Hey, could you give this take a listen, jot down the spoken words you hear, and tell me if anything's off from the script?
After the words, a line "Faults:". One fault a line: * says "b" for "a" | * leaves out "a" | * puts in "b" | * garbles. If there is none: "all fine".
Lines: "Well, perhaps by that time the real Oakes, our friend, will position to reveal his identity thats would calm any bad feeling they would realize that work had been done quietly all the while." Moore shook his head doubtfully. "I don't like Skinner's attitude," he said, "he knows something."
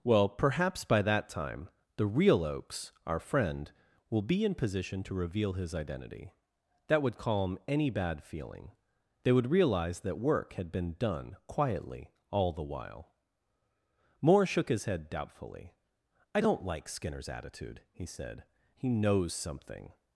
"Well, perhaps by that time the real Oakes, our friend, will be in position to reveal his identity that would calm any bad feeling they would realize that work had been done quietly all the while." Moore shook his head doubtfully. "I don't like Skinner's attitude," he said, "he knows something."
Faults:
* puts in "be in"
* says "that" for "thats"